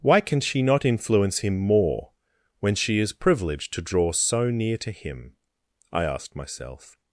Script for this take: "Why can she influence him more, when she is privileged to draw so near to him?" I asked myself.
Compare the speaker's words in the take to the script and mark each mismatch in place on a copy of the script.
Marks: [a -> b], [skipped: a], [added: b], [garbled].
"Why can she [added: not] influence him more, when she is privileged to draw so near to him?" I asked myself.